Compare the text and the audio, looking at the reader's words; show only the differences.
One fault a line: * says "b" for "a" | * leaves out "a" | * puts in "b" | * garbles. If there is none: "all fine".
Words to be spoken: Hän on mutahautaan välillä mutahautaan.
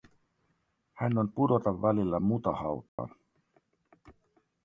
* says "pudota" for "mutahautaan"